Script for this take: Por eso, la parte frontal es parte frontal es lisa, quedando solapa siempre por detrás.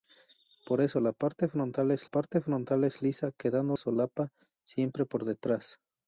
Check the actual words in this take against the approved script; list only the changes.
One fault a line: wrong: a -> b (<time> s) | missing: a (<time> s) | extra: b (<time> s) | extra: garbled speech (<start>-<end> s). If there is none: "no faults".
no faults